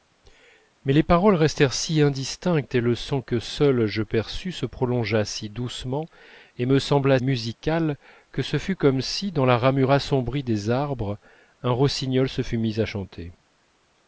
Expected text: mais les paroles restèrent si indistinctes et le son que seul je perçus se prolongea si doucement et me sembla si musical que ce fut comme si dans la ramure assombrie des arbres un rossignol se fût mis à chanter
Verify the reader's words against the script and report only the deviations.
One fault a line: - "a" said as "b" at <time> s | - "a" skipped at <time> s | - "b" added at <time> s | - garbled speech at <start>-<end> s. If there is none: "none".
- "si" skipped at 7.2 s